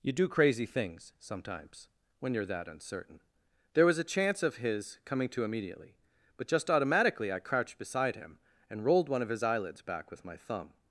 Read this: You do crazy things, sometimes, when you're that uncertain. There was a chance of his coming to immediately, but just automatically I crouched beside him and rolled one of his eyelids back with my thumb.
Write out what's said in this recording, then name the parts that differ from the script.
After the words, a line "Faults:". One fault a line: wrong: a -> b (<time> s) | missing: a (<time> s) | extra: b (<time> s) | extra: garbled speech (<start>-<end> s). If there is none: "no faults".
You do crazy things, sometimes, when you're that uncertain. There was a chance of his coming to immediately, but just automatically I crouched beside him and rolled one of his eyelids back with my thumb.
Faults:
no faults